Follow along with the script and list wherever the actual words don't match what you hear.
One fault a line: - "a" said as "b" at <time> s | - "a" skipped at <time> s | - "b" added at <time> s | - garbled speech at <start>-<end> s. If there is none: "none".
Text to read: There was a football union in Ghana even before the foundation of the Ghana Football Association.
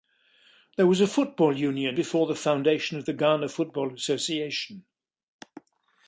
- "in Ghana even" skipped at 2.0 s